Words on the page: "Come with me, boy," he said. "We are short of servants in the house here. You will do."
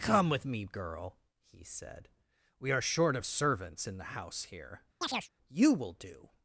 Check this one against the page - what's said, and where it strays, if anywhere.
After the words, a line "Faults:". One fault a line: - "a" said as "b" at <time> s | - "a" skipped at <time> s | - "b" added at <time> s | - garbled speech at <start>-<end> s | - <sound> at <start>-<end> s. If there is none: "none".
"Come with me, girl," he said. "We are short of servants in the house here. You will do."
Faults:
- "boy" said as "girl" at 0.7 s
- chirp at 5.0-5.3 s